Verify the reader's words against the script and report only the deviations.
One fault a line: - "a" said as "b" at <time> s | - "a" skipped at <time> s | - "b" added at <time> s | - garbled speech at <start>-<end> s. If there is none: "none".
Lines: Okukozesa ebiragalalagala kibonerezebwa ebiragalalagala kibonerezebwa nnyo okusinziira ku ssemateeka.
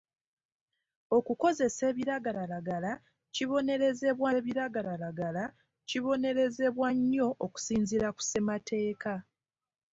none